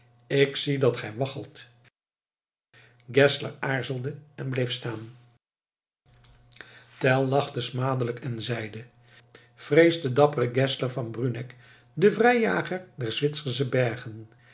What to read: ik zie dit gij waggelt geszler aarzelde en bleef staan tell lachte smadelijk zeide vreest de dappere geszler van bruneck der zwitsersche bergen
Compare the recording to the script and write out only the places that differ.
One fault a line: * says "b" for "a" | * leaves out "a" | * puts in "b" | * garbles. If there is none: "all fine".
* says "dat" for "dit"
* puts in "en"
* puts in "den vrijjager"